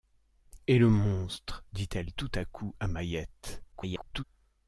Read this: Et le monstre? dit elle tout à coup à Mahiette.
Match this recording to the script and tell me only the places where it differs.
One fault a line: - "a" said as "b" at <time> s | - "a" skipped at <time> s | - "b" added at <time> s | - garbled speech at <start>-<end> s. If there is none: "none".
- garbled speech at 3.7-4.2 s